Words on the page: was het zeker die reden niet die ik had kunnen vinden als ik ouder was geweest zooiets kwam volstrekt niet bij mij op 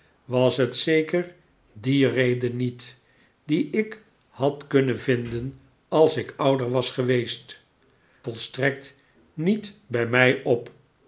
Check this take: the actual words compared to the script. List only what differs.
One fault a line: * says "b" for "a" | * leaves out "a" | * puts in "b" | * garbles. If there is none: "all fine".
* leaves out "zooiets kwam"